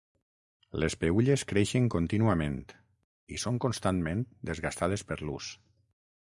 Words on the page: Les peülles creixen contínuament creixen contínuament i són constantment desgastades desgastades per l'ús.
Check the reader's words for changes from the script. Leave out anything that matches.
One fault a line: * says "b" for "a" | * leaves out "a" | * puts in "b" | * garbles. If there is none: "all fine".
* leaves out "creixen contínuament"
* leaves out "desgastades"